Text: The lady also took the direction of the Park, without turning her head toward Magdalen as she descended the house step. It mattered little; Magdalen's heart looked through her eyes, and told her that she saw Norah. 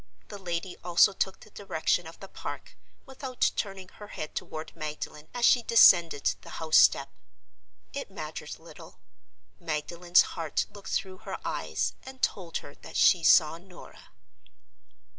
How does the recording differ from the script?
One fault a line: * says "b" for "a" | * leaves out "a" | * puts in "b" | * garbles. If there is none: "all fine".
all fine